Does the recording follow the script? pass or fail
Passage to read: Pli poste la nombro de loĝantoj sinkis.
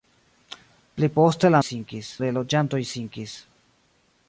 fail